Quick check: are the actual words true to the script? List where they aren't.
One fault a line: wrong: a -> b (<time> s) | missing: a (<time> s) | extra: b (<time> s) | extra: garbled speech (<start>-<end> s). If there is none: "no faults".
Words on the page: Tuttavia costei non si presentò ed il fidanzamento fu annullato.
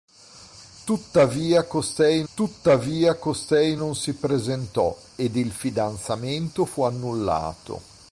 extra: tuttavia costei (2.3 s)